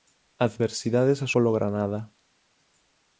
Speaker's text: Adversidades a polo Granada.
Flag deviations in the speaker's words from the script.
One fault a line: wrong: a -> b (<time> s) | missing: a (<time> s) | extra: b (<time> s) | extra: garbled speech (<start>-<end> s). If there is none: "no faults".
no faults